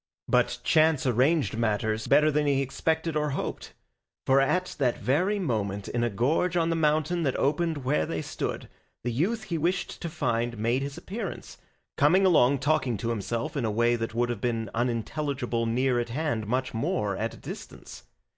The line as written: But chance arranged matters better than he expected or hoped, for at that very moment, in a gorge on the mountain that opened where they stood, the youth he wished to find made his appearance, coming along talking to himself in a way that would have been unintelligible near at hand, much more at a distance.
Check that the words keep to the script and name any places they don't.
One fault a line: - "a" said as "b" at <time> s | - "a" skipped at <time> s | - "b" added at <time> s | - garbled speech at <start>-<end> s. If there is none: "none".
none